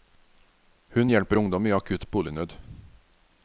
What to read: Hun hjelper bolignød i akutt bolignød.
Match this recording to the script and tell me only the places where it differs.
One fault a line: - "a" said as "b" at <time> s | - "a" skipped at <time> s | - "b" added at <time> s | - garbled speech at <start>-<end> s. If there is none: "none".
- "bolignød" said as "ungdom" at 1.4 s